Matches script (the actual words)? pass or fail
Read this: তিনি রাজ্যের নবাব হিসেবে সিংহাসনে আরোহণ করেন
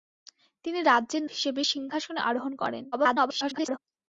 fail